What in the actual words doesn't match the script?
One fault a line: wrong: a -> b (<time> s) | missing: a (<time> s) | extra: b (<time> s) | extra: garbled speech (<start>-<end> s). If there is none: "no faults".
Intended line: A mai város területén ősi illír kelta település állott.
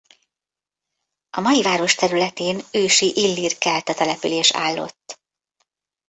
no faults